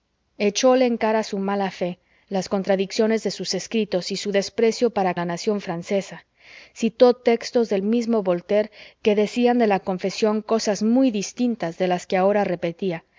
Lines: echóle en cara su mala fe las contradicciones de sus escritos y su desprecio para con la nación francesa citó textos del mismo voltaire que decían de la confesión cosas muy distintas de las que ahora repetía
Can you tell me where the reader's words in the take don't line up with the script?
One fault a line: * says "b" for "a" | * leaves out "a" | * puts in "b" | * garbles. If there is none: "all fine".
* leaves out "con"